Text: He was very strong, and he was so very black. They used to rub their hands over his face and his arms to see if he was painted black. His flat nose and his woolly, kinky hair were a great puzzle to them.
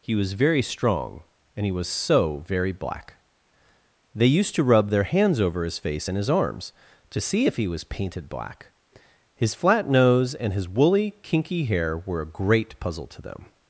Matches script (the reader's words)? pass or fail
pass